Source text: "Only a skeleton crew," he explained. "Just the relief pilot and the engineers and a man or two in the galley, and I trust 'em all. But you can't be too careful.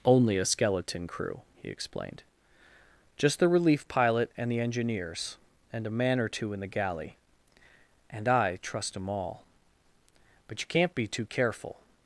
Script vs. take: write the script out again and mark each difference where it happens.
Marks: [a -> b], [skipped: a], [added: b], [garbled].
"Only a skeleton crew," he explained. "Just the relief pilot and the engineers and a man or two in the galley, and I trust 'em all. But you can't be too careful.